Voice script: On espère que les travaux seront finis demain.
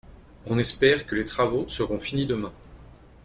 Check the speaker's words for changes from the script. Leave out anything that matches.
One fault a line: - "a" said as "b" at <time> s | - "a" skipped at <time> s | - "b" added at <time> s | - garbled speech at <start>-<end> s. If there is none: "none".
none